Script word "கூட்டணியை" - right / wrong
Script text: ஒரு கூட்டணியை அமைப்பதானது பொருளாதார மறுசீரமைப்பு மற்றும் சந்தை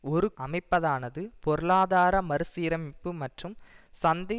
wrong